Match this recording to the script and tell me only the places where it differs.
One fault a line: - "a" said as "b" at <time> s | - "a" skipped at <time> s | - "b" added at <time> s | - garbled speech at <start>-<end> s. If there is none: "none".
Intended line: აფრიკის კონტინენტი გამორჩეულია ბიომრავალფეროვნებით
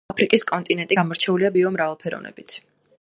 none